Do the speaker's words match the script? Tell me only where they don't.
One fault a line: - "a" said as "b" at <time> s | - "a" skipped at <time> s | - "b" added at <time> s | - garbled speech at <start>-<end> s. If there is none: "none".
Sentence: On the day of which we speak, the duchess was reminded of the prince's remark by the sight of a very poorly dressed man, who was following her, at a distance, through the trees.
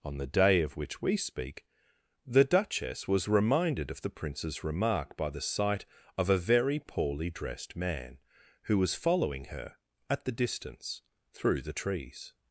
- "a" said as "the" at 10.2 s